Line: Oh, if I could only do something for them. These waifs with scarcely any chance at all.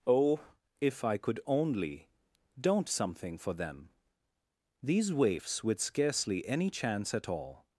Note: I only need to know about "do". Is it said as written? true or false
false